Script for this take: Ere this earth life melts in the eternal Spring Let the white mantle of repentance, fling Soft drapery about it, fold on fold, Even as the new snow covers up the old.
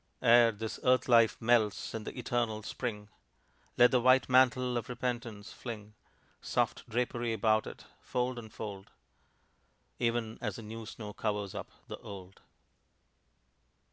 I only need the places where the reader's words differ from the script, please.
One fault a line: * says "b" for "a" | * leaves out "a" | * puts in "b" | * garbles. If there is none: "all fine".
all fine